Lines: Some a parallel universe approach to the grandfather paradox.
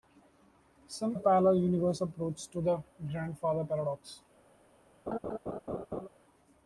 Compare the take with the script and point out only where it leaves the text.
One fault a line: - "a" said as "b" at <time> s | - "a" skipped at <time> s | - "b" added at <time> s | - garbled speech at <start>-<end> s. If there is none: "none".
none